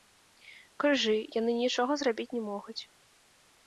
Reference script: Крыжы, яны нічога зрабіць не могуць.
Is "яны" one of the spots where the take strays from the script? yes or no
no